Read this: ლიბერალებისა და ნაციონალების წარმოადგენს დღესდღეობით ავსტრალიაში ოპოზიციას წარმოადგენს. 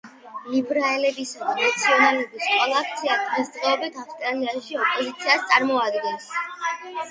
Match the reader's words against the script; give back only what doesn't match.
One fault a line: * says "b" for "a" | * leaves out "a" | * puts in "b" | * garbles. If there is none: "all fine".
* says "კოალიცია" for "წარმოადგენს"